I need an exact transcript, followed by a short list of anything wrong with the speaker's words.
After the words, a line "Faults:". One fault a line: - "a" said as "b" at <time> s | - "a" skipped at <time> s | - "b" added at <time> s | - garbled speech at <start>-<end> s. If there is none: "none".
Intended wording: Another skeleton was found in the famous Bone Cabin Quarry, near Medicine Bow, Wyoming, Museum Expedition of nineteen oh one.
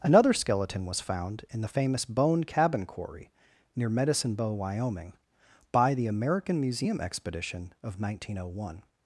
Another skeleton was found in the famous Bone Cabin Quarry, near Medicine Bow, Wyoming, by the American Museum Expedition of nineteen oh one.
Faults:
- "by the American" added at 5.7 s